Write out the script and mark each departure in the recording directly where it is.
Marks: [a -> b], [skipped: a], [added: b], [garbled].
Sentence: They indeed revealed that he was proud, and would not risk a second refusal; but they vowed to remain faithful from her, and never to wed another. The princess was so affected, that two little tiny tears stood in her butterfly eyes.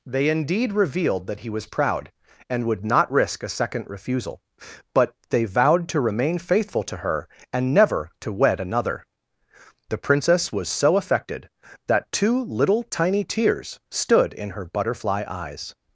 They indeed revealed that he was proud, and would not risk a second refusal; but they vowed to remain faithful [from -> to] her, and never to wed another. The princess was so affected, that two little tiny tears stood in her butterfly eyes.